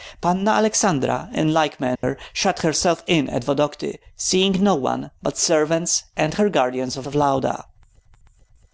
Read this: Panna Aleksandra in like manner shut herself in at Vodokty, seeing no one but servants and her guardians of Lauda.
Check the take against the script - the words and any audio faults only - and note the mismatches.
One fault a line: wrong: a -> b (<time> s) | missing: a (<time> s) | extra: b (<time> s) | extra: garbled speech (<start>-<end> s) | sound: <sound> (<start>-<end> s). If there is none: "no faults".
sound: dropout (2.0-2.0 s)
extra: of (7.1 s)